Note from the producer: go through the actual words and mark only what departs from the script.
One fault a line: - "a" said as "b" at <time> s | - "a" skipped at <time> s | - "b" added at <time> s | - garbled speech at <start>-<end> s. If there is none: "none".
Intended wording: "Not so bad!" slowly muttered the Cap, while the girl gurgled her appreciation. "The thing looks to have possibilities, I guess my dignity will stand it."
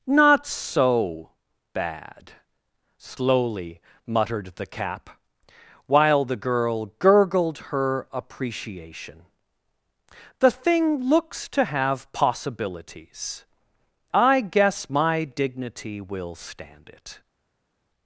none